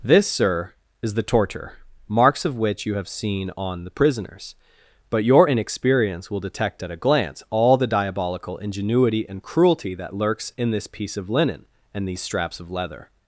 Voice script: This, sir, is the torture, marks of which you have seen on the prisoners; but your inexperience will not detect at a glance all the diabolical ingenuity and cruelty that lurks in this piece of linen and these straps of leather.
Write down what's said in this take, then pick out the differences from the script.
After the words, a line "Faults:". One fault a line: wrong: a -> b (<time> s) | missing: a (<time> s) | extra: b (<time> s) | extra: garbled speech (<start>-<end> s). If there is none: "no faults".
This, sir, is the torture, marks of which you have seen on the prisoners; but your inexperience will detect at a glance all the diabolical ingenuity and cruelty that lurks in this piece of linen and these straps of leather.
Faults:
missing: not (6.4 s)